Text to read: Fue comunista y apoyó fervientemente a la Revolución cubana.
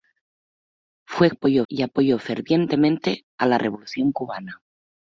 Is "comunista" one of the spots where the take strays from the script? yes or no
yes